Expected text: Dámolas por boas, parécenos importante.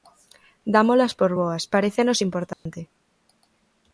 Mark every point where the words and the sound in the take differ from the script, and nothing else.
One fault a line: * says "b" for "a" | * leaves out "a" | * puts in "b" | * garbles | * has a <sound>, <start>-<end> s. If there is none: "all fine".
* has a dropout, 2.5-2.7 s